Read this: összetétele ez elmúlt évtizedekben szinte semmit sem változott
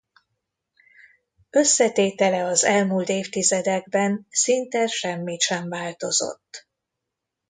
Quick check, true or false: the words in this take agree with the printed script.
false